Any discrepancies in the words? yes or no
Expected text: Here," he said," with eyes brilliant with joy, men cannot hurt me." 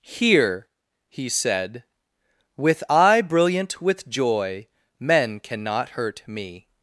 yes